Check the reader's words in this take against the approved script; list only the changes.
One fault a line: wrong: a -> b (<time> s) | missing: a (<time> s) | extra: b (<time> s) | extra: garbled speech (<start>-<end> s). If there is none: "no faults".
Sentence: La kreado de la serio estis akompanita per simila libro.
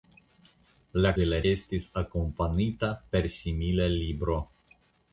missing: kreado (1.1 s)
missing: serio (1.4 s)